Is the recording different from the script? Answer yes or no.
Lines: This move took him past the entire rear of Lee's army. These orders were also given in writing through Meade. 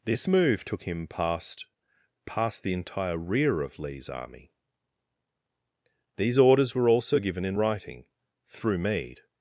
yes